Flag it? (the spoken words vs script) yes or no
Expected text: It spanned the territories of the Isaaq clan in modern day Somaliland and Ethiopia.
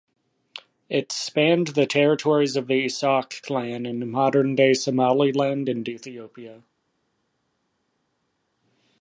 no